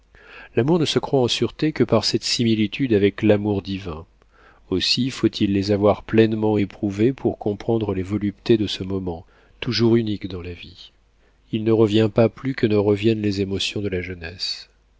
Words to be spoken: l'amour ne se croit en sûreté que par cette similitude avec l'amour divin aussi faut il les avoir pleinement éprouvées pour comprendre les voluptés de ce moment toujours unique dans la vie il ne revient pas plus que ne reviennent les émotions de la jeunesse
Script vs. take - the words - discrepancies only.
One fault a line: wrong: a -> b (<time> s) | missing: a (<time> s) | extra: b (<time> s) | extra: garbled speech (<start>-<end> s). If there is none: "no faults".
no faults